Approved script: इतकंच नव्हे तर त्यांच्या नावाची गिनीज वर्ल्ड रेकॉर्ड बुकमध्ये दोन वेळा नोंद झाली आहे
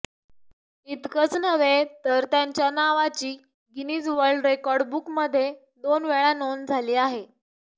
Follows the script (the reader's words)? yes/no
yes